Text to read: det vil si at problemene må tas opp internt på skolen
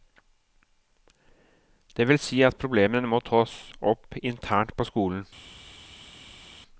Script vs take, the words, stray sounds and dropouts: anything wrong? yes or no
no